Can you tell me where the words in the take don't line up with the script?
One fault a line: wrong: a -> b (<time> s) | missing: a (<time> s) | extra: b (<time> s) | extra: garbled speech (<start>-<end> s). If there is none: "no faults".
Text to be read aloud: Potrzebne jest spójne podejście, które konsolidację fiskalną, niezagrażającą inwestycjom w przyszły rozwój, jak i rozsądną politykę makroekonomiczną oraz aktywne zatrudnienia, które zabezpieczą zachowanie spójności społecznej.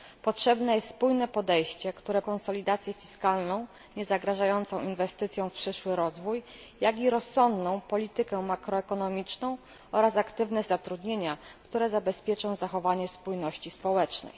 no faults